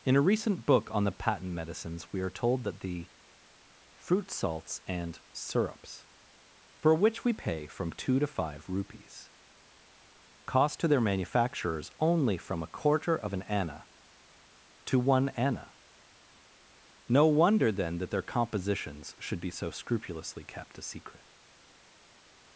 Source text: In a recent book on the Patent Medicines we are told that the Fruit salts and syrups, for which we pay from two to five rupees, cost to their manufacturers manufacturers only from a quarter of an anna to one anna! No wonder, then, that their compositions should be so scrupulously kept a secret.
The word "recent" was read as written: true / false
true